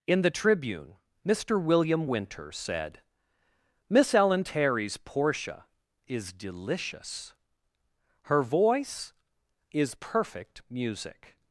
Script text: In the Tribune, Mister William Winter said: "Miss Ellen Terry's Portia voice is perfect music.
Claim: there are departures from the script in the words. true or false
true